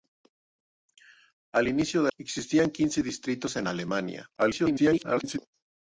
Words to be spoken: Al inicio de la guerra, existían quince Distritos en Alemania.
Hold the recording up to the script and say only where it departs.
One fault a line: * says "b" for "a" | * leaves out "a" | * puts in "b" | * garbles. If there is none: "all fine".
* leaves out "la guerra"
* garbles